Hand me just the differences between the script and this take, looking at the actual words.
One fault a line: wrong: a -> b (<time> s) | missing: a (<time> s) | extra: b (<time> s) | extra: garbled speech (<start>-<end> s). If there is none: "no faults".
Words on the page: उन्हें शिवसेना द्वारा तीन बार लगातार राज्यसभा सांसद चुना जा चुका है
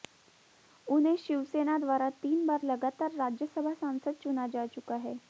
no faults